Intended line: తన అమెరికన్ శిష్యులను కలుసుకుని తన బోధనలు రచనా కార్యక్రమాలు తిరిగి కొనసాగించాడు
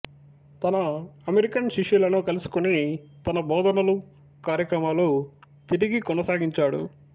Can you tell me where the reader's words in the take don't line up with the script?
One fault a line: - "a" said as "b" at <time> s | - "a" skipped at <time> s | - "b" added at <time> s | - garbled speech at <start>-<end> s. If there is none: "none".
- "రచనా" skipped at 4.0 s